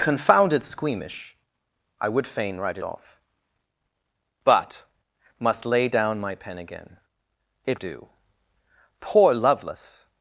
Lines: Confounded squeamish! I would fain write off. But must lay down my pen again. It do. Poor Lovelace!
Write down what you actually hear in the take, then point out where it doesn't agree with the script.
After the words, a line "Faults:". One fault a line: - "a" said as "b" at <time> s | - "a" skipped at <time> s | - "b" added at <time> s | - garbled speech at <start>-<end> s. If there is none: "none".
Confounded squeamish! I would fain write off. But must lay down my pen again. It do. Poor Lovelace!
Faults:
none